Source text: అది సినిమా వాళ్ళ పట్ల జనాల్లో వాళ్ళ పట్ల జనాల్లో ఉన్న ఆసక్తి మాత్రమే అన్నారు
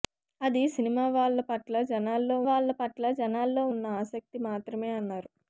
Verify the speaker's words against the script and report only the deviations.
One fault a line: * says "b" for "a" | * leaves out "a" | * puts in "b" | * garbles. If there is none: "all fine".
all fine